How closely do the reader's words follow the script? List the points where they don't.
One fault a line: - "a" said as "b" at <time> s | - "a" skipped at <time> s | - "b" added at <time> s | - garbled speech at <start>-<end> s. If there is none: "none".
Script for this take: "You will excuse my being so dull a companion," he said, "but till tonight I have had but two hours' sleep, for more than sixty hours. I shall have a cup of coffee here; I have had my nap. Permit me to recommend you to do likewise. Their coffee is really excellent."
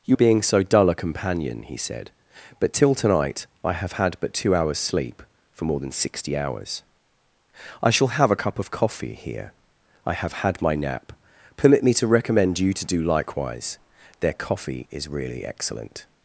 - "will excuse my" skipped at 0.1 s